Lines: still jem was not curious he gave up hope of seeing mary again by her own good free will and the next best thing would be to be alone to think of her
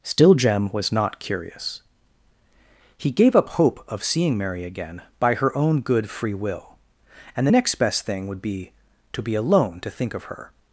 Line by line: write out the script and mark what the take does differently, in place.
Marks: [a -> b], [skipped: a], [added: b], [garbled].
still jem was not curious he gave up hope of seeing mary again by her own good free will and the next best thing would be to be alone to think of her